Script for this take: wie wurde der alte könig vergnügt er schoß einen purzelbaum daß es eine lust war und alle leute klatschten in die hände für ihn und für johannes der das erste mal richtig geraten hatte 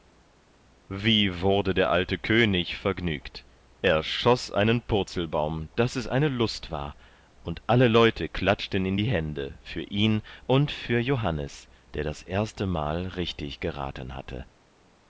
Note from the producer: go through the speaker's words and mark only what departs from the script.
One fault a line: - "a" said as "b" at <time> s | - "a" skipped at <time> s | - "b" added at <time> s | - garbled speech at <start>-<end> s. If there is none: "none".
none